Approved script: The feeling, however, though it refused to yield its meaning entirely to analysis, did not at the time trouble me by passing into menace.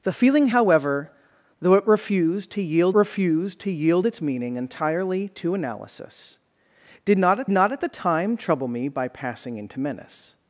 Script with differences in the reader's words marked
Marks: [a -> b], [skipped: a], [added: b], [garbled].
The feeling, however, though it refused to yield [added: refused to yield] its meaning entirely to analysis, did not at [added: not at] the time trouble me by passing into menace.